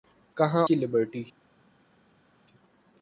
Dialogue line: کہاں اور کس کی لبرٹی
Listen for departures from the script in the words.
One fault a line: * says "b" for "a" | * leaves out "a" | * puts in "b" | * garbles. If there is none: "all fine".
* leaves out "اور کس"